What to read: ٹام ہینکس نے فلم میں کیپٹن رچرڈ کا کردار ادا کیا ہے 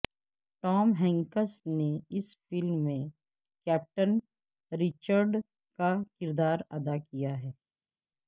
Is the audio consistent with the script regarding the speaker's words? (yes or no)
no